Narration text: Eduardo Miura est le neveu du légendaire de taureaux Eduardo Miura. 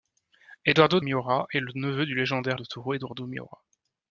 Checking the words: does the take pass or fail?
pass